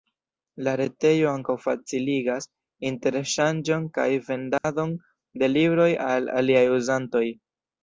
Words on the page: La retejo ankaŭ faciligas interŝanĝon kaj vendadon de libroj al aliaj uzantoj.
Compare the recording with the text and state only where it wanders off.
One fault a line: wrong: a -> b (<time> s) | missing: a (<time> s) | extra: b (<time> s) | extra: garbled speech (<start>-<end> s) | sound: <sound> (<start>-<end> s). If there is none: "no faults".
sound: dropout (4.6-4.6 s)